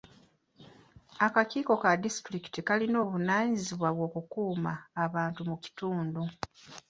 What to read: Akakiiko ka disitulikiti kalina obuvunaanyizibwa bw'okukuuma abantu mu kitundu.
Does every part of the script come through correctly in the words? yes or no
yes